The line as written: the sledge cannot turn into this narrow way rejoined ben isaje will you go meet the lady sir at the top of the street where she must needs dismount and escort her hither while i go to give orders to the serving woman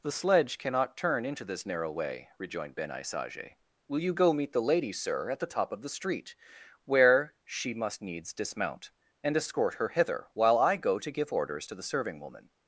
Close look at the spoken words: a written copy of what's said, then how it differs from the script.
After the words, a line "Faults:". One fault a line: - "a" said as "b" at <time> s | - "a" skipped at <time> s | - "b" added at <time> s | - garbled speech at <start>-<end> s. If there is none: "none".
the sledge cannot turn into this narrow way rejoined ben isaje will you go meet the lady sir at the top of the street where she must needs dismount and escort her hither while i go to give orders to the serving woman
Faults:
none